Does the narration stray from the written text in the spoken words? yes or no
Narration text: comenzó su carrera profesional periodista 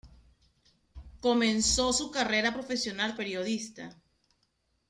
no